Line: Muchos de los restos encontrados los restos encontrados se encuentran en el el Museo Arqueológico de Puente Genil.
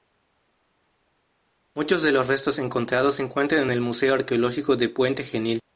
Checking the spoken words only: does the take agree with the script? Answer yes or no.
no